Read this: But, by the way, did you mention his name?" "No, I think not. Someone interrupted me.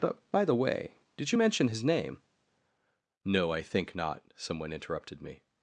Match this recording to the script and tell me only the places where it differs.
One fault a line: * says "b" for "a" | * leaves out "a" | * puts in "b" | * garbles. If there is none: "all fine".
all fine